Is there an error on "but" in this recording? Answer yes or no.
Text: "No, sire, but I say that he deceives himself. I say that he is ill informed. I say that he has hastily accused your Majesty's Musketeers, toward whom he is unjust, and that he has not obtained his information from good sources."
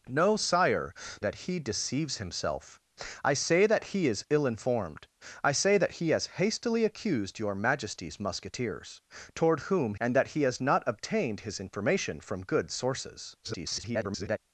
yes